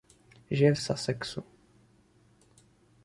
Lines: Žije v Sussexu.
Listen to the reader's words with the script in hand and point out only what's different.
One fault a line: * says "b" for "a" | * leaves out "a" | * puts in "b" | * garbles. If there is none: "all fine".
all fine